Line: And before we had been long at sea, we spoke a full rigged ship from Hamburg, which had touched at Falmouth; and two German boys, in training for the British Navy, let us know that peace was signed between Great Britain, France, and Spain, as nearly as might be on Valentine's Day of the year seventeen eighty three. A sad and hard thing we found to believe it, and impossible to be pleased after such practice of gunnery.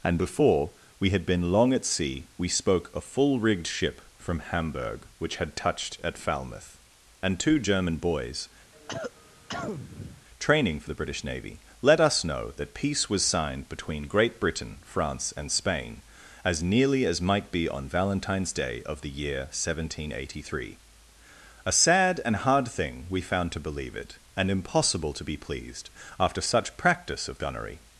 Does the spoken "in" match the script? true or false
false